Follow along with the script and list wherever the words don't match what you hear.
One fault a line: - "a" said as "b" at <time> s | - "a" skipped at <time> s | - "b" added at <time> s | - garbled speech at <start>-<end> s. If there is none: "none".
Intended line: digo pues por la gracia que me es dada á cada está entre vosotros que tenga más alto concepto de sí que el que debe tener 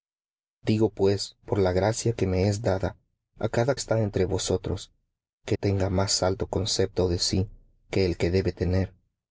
none